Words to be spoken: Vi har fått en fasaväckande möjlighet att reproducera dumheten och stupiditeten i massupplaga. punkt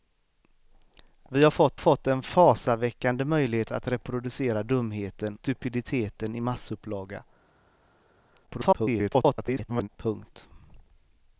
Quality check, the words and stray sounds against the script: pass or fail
fail